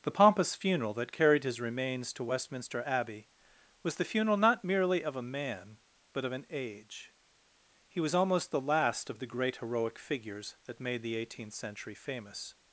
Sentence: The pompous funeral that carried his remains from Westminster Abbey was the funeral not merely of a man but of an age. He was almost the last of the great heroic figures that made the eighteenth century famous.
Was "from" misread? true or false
true